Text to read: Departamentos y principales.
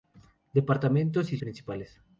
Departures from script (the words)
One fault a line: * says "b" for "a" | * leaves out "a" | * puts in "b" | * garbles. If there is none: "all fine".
all fine